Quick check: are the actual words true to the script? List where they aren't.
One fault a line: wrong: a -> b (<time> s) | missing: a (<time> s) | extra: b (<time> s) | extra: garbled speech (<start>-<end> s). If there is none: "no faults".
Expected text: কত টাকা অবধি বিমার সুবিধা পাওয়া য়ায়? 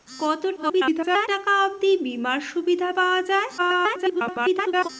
extra: garbled speech (0.6-1.3 s)
extra: garbled speech (3.6-4.9 s)